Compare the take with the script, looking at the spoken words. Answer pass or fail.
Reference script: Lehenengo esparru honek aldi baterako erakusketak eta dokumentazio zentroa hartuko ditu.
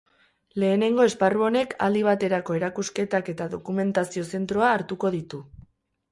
pass